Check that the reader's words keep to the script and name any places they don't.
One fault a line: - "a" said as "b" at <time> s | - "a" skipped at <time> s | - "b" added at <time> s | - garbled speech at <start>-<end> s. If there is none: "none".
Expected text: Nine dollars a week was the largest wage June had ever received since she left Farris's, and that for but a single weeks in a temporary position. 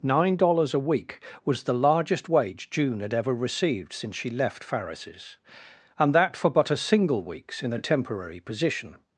none